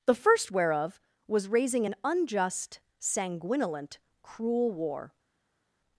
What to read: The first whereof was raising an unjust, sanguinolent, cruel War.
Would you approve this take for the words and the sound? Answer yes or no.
yes